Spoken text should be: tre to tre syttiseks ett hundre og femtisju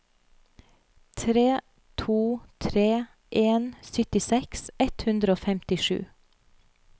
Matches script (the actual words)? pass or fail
fail